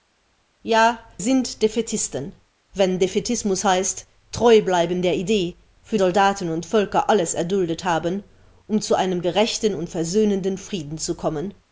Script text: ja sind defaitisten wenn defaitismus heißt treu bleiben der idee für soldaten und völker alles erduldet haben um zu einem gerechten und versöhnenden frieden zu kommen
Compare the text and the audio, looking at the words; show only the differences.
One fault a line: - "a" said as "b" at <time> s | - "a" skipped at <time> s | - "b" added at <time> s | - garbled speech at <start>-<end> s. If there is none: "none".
none